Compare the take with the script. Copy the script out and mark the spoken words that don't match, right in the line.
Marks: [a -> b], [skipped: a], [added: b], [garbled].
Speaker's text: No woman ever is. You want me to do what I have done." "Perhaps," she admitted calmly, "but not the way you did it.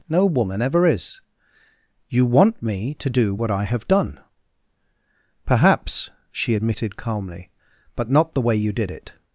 No woman ever is. You want me to do what I have done." "Perhaps," she admitted calmly, "but not the way you did it.